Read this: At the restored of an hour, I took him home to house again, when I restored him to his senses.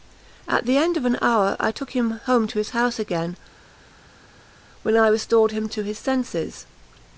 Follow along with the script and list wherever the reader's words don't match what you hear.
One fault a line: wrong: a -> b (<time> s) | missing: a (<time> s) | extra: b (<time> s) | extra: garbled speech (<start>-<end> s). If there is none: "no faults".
wrong: restored -> end (0.8 s)
extra: his (2.6 s)